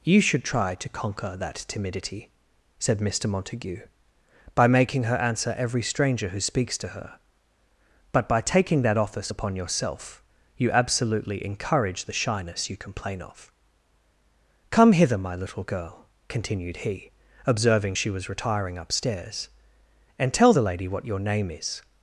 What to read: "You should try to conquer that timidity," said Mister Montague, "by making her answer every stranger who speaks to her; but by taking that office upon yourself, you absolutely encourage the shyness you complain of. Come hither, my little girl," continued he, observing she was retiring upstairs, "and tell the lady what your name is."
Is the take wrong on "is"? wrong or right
right